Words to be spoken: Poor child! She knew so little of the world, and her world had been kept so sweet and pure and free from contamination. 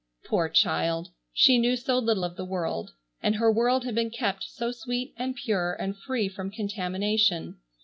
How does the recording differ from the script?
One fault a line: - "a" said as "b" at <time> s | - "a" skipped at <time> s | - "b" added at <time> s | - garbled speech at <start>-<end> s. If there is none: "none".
none